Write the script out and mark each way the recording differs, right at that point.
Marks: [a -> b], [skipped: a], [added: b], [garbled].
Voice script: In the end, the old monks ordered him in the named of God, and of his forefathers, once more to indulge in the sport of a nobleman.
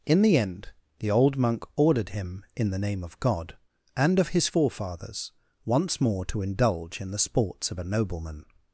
In the end, the old [monks -> monk] ordered him in the [named -> name] of God, and of his forefathers, once more to indulge in the [sport -> sports] of a nobleman.